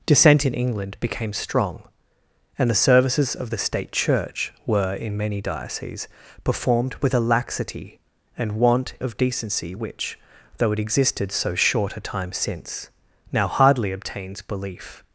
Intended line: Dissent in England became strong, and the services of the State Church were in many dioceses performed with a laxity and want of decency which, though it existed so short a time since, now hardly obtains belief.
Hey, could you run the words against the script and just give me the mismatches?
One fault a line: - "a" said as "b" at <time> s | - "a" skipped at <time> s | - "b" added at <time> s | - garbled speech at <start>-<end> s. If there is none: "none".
none